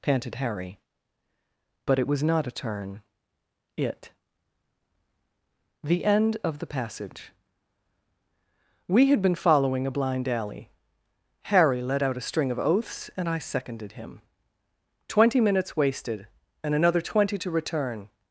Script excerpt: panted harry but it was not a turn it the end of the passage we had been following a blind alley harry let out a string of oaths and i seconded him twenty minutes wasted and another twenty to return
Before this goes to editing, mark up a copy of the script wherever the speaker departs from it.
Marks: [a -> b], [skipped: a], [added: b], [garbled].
panted harry but it was not a turn it the end of the passage we had been following a blind alley harry let out a string of oaths and i seconded him twenty minutes wasted and another twenty to return